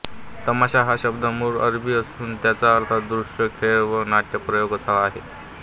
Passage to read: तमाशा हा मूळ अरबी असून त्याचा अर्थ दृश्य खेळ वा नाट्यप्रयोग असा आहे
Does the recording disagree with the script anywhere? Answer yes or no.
yes